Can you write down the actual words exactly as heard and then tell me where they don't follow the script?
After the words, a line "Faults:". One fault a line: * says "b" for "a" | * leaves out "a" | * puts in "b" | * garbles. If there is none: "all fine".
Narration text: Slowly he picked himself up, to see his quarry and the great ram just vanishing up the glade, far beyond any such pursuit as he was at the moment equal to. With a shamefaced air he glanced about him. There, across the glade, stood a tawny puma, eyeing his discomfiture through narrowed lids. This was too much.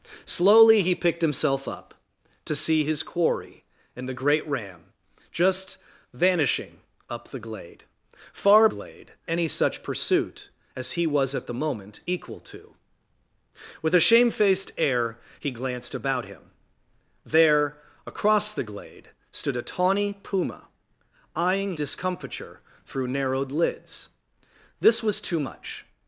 Slowly he picked himself up, to see his quarry and the great ram just vanishing up the glade, far glade any such pursuit as he was at the moment equal to. With a shamefaced air he glanced about him. There, across the glade, stood a tawny puma, eyeing discomfiture through narrowed lids. This was too much.
Faults:
* says "glade" for "beyond"
* leaves out "his"